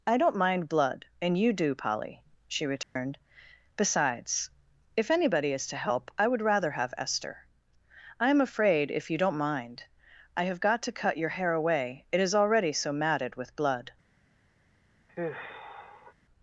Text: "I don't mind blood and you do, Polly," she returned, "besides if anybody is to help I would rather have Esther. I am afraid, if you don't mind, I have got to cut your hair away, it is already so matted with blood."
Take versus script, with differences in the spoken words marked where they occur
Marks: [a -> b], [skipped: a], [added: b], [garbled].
"I don't mind blood and you do, Polly," she returned, "besides if anybody is to help I would rather have Esther. I am afraid, if you don't mind, I have got to cut your hair away, it is already so matted with blood."